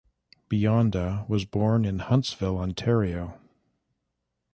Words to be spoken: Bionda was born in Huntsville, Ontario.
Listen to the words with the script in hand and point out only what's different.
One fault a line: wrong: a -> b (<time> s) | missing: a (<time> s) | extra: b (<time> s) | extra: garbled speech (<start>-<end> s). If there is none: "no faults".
no faults